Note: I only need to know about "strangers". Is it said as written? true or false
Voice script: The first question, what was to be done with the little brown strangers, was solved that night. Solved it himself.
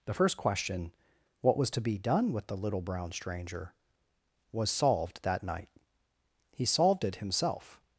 false